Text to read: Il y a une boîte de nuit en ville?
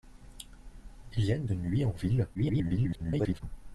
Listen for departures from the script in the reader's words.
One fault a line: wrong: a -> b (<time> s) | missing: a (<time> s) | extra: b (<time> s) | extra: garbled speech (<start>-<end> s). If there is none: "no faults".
missing: boîte (1.4 s)
extra: garbled speech (2.3-3.4 s)